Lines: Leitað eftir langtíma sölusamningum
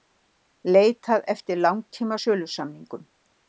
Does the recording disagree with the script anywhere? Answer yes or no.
no